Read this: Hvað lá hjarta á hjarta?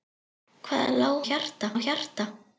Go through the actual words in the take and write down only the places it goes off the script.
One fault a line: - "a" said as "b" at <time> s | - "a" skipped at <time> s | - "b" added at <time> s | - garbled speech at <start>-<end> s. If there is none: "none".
none